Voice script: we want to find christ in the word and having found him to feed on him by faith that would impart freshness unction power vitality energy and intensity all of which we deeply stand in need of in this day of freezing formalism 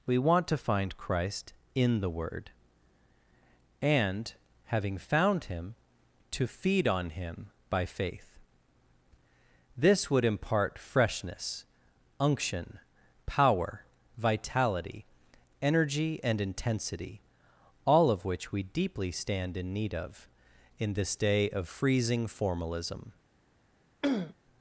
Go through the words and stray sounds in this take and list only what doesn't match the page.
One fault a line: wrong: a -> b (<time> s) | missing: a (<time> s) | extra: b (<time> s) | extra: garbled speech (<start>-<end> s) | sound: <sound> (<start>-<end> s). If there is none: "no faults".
wrong: that -> this (9.8 s)
sound: throat clearing (24.0-24.3 s)